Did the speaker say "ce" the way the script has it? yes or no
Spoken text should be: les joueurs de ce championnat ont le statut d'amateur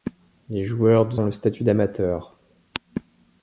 no